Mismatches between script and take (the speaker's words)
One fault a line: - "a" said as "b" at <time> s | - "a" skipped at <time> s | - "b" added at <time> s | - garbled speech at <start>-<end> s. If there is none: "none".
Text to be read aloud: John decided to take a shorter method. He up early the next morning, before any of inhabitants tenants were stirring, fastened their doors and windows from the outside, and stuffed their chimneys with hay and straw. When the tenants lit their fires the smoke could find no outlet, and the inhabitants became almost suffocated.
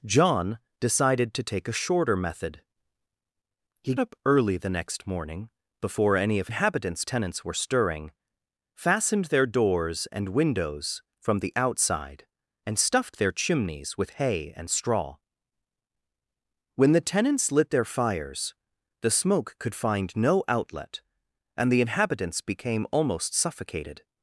none